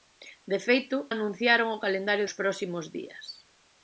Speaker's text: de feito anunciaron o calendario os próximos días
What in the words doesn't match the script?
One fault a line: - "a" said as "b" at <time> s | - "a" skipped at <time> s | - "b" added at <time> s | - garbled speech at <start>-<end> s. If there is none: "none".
none